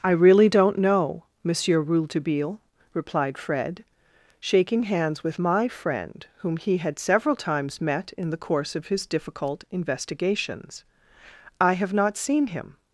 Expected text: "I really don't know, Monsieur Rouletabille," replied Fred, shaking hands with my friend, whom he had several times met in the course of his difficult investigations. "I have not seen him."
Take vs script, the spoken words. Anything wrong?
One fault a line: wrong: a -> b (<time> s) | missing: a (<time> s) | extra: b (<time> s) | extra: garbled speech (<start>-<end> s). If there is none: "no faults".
no faults